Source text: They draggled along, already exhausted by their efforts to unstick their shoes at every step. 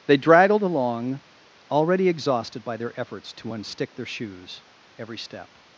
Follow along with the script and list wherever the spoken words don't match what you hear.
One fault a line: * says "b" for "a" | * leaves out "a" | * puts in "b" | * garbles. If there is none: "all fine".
* leaves out "at"